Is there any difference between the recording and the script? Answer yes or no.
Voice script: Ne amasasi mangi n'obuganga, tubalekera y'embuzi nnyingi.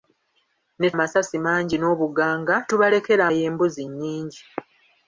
no